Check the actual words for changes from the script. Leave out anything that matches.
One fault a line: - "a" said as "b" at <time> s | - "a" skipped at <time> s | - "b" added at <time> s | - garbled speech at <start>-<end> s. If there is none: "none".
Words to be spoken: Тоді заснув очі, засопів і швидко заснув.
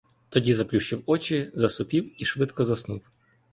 - "заснув" said as "заплющив" at 0.5 s